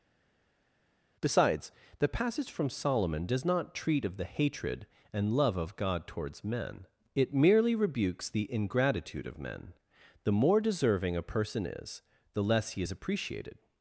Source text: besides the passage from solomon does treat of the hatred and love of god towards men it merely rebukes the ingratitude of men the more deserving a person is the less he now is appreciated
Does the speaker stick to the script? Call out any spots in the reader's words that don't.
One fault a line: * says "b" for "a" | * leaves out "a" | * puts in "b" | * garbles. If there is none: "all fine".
* puts in "not"
* leaves out "now"